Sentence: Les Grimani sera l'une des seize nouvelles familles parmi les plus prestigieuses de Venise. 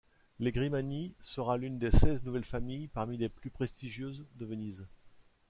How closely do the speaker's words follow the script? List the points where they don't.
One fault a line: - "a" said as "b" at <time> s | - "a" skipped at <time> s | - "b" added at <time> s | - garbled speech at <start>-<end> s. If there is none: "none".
none